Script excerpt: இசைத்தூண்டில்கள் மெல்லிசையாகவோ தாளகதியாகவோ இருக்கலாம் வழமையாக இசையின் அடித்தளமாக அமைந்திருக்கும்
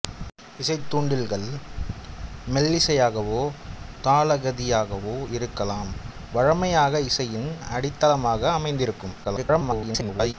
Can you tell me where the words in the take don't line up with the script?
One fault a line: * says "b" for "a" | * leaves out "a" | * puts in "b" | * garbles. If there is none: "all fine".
* garbles